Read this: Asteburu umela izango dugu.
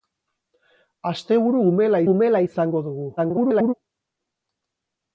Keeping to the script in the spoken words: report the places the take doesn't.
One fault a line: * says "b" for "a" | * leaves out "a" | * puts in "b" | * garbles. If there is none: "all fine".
* puts in "umela"
* garbles